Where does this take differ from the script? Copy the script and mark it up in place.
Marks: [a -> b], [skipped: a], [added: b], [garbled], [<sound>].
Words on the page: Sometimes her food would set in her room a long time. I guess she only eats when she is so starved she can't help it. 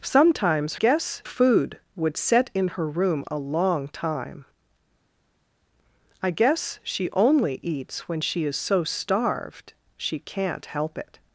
Sometimes [her -> guess] food would set in her room a long time. I guess she only eats when she is so starved she can't help it.